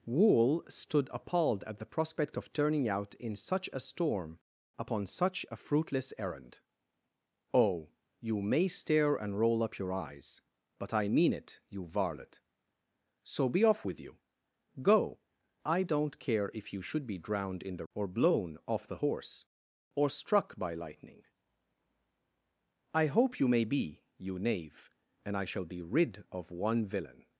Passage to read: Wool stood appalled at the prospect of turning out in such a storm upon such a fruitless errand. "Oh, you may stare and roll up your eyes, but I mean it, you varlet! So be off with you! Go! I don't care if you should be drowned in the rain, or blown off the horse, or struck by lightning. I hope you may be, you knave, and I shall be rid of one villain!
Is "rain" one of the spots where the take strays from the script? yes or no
yes